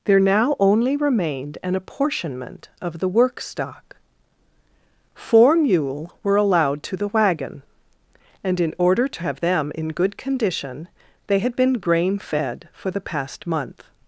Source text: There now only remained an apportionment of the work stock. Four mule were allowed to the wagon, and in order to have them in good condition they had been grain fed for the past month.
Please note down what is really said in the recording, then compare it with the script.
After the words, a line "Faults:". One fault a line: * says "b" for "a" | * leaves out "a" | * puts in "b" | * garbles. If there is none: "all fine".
There now only remained an apportionment of the work stock. Four mule were allowed to the wagon, and in order to have them in good condition they had been grain fed for the past month.
Faults:
all fine